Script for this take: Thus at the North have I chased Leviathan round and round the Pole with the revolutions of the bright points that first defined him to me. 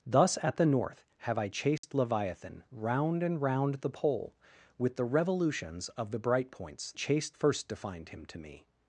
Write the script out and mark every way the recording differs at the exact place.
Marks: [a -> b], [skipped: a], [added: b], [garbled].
Thus at the North have I chased Leviathan round and round the Pole with the revolutions of the bright points [that -> chased] first defined him to me.